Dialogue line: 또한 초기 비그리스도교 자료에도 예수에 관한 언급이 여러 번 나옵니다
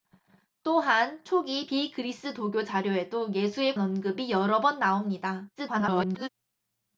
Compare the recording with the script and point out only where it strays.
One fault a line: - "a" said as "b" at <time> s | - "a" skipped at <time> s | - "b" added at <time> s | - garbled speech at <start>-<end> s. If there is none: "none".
- "관한" skipped at 3.8 s
- garbled speech at 5.6-6.3 s